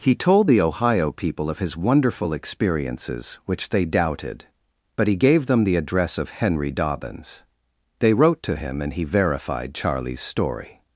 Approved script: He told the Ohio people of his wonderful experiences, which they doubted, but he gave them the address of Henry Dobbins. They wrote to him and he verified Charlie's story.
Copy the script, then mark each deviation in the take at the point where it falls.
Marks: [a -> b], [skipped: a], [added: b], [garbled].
He told the Ohio people of his wonderful experiences, which they doubted, but he gave them the address of Henry Dobbins. They wrote to him and he verified Charlie's story.